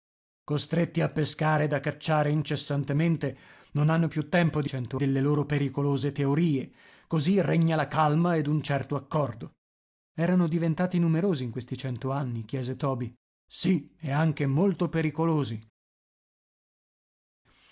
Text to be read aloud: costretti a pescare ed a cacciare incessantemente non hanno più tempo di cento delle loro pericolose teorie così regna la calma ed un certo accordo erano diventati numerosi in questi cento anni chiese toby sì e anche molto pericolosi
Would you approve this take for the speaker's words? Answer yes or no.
yes